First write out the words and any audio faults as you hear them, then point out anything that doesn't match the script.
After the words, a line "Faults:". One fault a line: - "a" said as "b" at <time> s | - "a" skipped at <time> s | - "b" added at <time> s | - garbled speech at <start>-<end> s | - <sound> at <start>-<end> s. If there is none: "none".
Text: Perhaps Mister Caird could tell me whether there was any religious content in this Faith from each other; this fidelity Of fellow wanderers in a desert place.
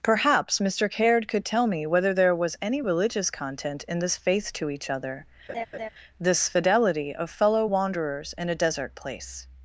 Perhaps Mister Caird could tell me whether there was any religious content in this Faith to each other; this fidelity Of fellow wanderers in a desert place.
Faults:
- "from" said as "to" at 4.5 s
- laugh at 5.5-5.9 s